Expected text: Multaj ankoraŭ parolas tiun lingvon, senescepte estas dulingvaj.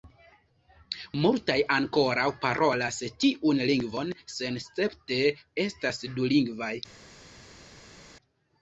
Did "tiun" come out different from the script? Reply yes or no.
no